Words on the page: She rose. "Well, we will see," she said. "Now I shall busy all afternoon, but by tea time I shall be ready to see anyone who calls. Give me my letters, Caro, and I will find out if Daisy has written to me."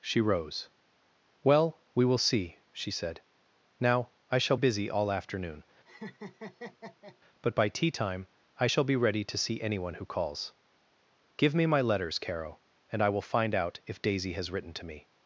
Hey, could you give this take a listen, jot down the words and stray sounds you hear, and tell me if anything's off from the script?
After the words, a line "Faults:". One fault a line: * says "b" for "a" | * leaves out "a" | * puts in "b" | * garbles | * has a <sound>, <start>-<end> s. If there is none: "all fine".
She rose. "Well, we will see," she said. "Now I shall busy all afternoon, but by tea time I shall be ready to see anyone who calls. Give me my letters, Caro, and I will find out if Daisy has written to me."
Faults:
* has a laugh, 5.9-7.2 s